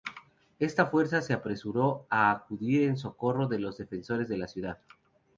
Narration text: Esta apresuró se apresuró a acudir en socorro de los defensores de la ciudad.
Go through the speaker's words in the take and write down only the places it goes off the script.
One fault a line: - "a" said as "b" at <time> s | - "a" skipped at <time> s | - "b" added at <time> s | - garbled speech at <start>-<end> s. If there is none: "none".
- "apresuró" said as "fuerza" at 0.9 s